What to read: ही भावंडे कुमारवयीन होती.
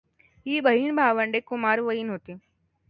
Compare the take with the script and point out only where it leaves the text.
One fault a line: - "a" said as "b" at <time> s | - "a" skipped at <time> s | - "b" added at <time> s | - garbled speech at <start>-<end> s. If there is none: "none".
- "बहीण" added at 0.6 s